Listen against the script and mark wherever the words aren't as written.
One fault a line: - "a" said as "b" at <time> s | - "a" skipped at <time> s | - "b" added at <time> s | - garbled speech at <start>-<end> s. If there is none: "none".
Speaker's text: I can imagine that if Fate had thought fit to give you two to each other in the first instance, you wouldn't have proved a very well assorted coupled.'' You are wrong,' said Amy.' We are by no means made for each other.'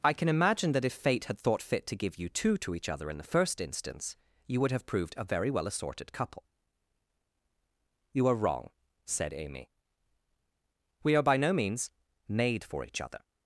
- "wouldn't" said as "would" at 4.6 s
- "coupled" said as "couple" at 6.1 s